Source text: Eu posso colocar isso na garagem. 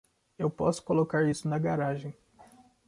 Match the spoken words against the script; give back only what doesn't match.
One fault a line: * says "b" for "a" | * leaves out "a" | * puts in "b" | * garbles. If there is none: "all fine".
all fine